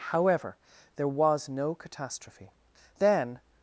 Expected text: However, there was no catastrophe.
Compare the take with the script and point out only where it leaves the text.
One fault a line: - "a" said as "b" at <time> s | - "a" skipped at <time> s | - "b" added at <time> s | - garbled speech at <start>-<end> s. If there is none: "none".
- "Then" added at 3.0 s